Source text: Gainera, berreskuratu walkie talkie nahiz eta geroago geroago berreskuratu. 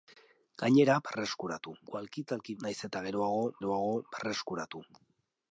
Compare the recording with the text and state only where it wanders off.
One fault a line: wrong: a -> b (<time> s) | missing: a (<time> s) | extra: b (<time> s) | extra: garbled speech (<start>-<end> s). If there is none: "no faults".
no faults